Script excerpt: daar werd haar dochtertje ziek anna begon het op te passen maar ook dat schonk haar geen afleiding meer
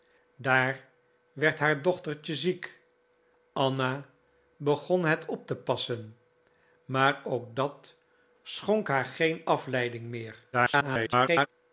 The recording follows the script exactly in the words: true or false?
false